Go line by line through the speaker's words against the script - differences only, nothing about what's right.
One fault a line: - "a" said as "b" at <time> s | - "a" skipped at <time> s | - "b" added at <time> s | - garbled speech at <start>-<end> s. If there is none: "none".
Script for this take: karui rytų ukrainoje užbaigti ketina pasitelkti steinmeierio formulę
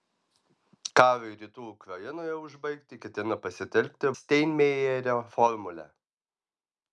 none